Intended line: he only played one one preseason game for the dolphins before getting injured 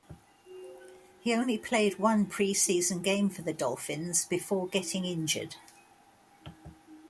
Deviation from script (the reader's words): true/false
true